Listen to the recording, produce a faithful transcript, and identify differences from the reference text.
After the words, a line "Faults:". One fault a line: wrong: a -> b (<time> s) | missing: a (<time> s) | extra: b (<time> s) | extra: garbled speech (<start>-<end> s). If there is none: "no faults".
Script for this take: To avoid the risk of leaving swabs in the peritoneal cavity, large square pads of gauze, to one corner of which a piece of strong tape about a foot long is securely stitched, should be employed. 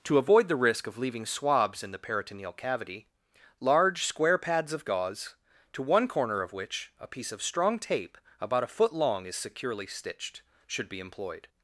To avoid the risk of leaving swabs in the peritoneal cavity, large square pads of gauze, to one corner of which a piece of strong tape about a foot long is securely stitched, should be employed.
Faults:
no faults